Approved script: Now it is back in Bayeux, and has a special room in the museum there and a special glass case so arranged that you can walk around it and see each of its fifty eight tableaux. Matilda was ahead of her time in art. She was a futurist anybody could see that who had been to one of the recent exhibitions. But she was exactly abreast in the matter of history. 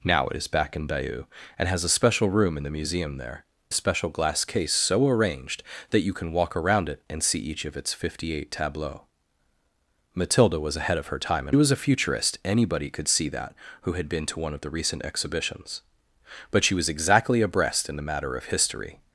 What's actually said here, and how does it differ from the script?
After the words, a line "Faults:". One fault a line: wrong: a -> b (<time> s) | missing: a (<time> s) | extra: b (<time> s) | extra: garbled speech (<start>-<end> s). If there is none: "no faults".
Now it is back in Bayeux, and has a special room in the museum there a special glass case so arranged that you can walk around it and see each of its fifty eight tableaux. Matilda was ahead of her time in was a futurist anybody could see that who had been to one of the recent exhibitions. But she was exactly abreast in the matter of history.
Faults:
missing: and (3.5 s)
missing: art She (11.6 s)